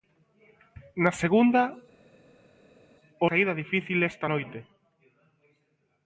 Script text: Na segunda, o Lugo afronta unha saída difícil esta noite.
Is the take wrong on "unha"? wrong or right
wrong